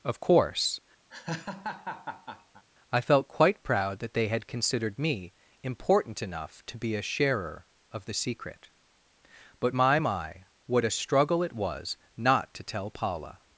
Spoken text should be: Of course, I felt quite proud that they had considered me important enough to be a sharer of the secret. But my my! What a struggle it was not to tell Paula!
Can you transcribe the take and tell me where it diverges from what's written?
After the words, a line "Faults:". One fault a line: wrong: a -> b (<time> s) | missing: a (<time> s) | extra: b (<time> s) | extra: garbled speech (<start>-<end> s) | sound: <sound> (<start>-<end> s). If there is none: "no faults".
Of course, I felt quite proud that they had considered me important enough to be a sharer of the secret. But my my! What a struggle it was not to tell Paula!
Faults:
sound: laugh (1.1-2.6 s)